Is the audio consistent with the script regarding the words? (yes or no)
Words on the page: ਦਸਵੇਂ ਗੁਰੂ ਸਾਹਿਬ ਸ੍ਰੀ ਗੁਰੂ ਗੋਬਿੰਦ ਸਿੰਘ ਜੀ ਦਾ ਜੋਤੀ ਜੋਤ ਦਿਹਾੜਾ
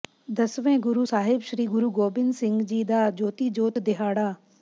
yes